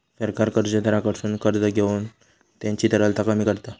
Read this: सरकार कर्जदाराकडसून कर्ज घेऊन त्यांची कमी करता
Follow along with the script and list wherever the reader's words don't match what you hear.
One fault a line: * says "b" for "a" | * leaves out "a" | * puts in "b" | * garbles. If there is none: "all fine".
* puts in "तरलता"